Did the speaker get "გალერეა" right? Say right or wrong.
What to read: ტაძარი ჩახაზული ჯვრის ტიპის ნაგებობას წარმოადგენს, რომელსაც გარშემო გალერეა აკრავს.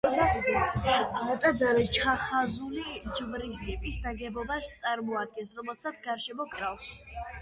wrong